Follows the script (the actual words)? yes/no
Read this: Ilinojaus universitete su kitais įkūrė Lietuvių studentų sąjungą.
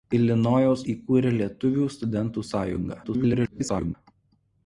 no